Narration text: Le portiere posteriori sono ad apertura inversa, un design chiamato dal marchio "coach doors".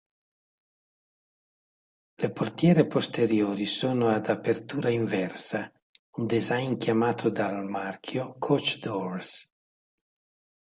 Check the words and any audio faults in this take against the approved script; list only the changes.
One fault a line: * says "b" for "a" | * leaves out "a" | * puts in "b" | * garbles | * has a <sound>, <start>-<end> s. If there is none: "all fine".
all fine